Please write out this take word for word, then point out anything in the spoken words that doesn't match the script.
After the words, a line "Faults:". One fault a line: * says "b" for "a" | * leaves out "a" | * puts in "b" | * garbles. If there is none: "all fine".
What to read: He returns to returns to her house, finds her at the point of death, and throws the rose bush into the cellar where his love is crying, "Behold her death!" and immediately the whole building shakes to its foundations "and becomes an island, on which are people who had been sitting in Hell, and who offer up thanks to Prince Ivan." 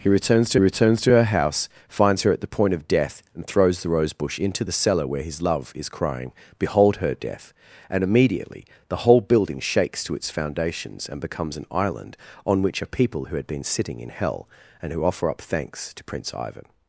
He returns to returns to her house, finds her at the point of death, and throws the rose bush into the cellar where his love is crying, "Behold her death!" and immediately the whole building shakes to its foundations "and becomes an island, on which are people who had been sitting in Hell, and who offer up thanks to Prince Ivan."
Faults:
all fine